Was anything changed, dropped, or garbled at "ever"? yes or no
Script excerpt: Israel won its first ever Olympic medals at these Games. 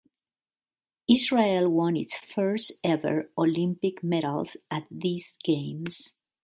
no